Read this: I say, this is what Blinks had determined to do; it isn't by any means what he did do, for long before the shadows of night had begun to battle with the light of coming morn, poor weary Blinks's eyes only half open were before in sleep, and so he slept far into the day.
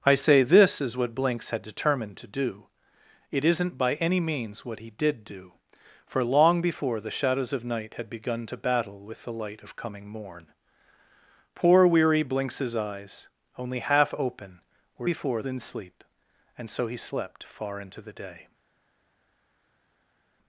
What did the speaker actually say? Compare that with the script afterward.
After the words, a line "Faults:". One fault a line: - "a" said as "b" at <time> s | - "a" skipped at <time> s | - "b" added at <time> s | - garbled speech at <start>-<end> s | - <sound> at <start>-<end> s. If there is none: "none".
I say, this is what Blinks had determined to do; it isn't by any means what he did do, for long before the shadows of night had begun to battle with the light of coming morn, poor weary Blinks's eyes only half open were before in sleep, and so he slept far into the day.
Faults:
none